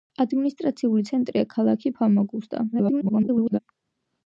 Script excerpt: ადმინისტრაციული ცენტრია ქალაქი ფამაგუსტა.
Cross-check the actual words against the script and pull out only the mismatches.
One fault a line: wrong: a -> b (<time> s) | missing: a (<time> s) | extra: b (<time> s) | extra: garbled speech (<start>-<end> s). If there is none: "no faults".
extra: garbled speech (2.7-3.6 s)